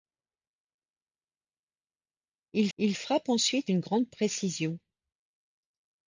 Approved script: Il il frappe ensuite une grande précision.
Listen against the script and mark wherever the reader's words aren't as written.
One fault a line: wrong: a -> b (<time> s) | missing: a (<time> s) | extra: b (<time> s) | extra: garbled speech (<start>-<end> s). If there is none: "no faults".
no faults